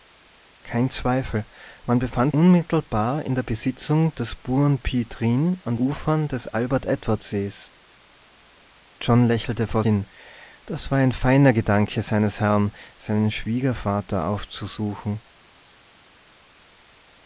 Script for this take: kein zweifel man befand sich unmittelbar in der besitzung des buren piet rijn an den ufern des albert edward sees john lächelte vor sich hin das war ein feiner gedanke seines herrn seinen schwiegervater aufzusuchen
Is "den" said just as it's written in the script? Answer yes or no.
no